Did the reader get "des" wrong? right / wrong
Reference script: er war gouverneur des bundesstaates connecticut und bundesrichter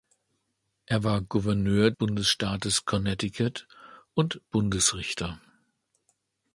wrong